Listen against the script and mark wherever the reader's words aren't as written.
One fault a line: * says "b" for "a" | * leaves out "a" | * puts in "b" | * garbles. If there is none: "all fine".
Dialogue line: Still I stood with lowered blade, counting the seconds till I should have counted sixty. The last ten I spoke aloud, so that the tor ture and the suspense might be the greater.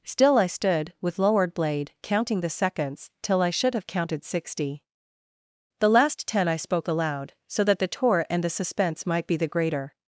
* says "tour" for "tor ture"